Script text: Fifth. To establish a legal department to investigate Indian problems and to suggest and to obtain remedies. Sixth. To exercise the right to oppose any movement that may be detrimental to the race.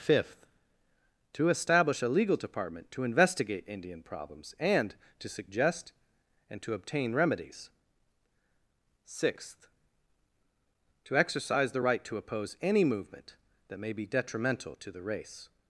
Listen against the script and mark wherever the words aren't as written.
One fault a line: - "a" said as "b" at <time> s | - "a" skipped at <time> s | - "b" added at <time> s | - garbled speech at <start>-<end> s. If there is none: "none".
none